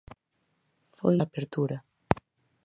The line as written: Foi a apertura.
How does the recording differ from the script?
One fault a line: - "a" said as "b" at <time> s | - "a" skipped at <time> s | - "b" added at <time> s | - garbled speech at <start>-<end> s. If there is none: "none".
none